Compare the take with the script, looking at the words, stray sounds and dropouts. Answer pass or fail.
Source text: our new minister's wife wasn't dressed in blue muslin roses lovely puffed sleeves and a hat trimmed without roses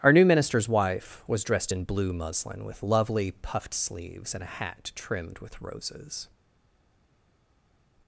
fail